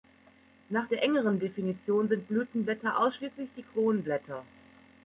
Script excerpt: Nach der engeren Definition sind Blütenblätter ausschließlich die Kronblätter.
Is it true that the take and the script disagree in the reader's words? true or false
false